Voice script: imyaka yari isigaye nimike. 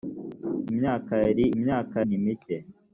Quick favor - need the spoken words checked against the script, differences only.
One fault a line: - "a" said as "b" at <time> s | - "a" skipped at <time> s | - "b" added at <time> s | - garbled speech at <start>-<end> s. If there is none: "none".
- "isigaye" said as "imyaka" at 1.6 s